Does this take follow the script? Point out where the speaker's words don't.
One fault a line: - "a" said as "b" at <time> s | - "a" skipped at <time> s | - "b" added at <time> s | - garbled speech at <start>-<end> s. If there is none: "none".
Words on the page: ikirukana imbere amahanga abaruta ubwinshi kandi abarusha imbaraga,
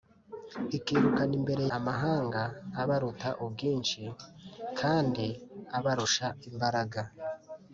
none